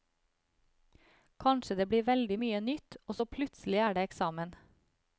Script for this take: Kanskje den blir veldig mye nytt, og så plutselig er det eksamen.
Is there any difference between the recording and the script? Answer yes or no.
yes